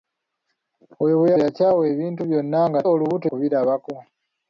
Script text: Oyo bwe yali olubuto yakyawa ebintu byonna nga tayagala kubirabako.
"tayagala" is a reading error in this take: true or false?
true